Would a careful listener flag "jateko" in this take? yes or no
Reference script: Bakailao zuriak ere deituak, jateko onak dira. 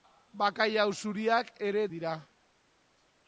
yes